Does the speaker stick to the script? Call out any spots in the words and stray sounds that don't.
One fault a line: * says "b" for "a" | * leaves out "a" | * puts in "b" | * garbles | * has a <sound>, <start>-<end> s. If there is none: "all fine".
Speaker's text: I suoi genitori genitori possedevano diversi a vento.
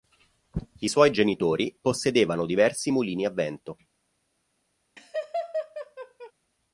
* leaves out "genitori"
* puts in "mulini"
* has a laugh, 5.0-6.3 s